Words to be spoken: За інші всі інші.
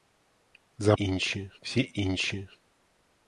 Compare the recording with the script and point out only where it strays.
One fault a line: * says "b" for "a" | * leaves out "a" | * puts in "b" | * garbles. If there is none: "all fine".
all fine